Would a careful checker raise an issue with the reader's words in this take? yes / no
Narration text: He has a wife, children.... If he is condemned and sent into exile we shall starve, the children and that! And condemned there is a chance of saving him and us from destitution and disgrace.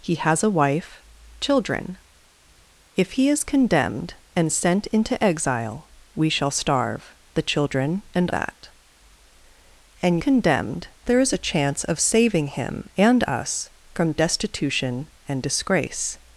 no